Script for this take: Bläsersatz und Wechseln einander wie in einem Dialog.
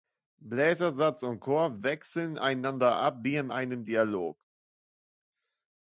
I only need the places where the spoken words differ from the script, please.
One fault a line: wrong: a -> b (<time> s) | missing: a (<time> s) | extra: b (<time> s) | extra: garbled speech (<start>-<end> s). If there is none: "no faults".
extra: Chor (1.4 s)
extra: ab (3.0 s)